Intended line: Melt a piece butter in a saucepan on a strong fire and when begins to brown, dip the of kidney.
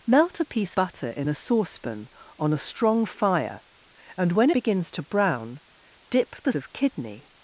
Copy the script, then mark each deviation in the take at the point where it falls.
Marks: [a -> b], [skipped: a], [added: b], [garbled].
Melt a piece butter in a saucepan on a strong fire and when begins to brown, dip the of kidney.